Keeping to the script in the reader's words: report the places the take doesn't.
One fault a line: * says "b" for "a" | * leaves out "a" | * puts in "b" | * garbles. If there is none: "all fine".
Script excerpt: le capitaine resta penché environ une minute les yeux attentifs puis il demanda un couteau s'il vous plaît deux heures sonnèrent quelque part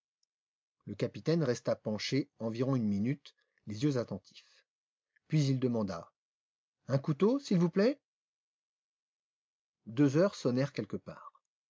all fine